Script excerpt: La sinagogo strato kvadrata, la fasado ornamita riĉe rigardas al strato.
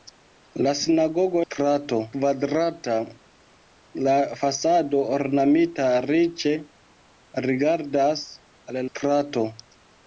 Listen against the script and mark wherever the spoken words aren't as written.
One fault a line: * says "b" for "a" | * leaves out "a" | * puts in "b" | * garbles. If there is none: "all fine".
all fine